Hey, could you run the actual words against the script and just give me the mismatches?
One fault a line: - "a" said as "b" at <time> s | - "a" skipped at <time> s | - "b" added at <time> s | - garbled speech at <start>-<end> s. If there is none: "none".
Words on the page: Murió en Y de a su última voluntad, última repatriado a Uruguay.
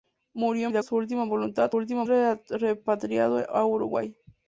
none